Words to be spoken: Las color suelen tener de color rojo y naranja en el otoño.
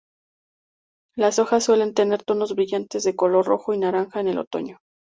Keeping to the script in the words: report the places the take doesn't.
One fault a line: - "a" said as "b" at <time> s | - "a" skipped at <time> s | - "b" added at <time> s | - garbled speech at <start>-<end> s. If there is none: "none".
- "color" said as "hojas" at 1.4 s
- "tonos brillantes" added at 2.2 s